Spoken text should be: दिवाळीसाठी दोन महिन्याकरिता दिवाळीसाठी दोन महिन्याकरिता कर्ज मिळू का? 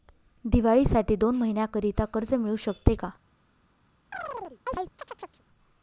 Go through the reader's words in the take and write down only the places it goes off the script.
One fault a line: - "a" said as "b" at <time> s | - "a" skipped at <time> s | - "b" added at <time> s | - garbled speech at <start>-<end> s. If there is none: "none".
- "दिवाळीसाठी दोन महिन्याकरिता" skipped at 2.0 s
- "शकते" added at 2.6 s